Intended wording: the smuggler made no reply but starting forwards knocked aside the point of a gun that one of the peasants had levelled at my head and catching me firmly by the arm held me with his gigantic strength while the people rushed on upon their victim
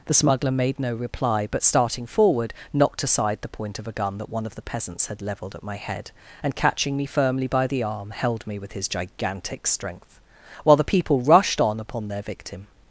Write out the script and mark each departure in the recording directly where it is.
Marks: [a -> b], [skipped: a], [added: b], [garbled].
the smuggler made no reply but starting [forwards -> forward] knocked aside the point of a gun that one of the peasants had levelled at my head and catching me firmly by the arm held me with his gigantic strength while the people rushed on upon their victim